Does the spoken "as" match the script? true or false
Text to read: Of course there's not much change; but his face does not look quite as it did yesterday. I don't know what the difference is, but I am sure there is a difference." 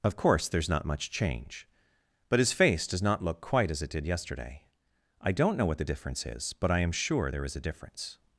true